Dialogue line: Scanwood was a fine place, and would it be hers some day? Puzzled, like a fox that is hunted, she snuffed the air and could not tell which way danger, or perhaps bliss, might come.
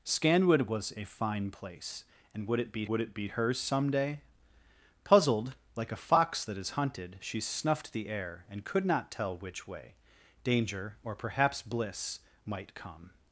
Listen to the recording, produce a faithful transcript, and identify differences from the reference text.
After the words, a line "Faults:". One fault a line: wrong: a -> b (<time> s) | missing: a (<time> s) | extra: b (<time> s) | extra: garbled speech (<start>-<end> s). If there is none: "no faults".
Scanwood was a fine place, and would it be would it be hers some day? Puzzled, like a fox that is hunted, she snuffed the air and could not tell which way danger, or perhaps bliss, might come.
Faults:
extra: would it be (2.9 s)